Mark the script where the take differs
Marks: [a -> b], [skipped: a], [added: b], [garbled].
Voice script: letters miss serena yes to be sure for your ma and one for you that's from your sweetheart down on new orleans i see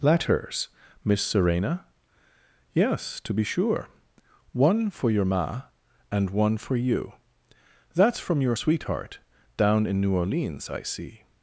letters miss serena yes to be sure [added: one] for your ma and one for you that's from your sweetheart down [on -> in] new orleans i see